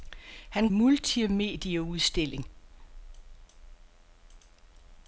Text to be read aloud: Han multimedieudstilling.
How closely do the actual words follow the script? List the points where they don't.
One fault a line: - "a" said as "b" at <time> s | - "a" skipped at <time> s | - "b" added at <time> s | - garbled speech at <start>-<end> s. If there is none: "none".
none